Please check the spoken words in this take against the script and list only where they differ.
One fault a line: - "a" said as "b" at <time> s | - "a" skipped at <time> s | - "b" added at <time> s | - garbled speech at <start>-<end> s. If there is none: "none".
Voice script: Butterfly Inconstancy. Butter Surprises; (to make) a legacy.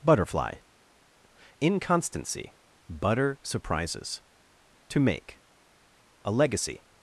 none